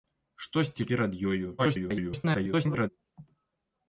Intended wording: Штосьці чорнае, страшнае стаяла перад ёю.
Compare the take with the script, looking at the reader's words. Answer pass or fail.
fail